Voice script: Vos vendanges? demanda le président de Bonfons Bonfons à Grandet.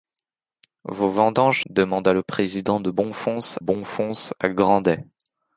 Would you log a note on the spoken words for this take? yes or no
no